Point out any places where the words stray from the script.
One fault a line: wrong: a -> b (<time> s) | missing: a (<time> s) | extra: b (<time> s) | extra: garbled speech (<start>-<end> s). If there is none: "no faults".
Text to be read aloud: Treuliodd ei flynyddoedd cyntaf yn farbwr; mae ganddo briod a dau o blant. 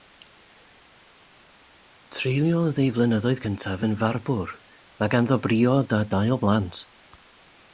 no faults